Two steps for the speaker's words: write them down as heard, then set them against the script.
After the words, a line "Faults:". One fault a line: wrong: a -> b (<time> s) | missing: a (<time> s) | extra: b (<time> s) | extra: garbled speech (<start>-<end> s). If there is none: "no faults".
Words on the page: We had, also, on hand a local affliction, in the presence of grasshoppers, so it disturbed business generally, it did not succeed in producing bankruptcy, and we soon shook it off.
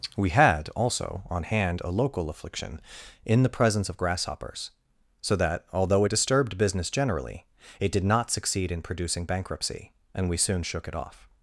We had, also, on hand a local affliction, in the presence of grasshoppers, so that, although it disturbed business generally, it did not succeed in producing bankruptcy, and we soon shook it off.
Faults:
extra: that although (5.4 s)